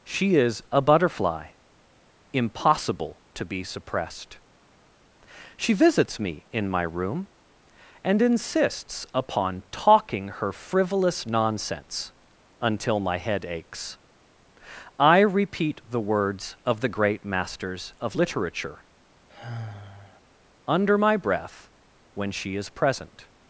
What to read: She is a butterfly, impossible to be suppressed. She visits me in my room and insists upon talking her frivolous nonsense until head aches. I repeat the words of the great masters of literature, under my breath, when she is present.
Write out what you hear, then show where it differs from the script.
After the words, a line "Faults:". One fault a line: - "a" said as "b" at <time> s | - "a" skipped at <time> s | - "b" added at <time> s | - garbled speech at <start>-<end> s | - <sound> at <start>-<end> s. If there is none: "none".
She is a butterfly, impossible to be suppressed. She visits me in my room and insists upon talking her frivolous nonsense until my head aches. I repeat the words of the great masters of literature, under my breath, when she is present.
Faults:
- "my" added at 13.0 s
- sigh at 19.3-20.2 s